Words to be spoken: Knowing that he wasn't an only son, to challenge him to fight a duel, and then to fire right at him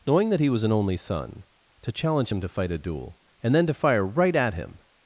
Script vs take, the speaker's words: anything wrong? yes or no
yes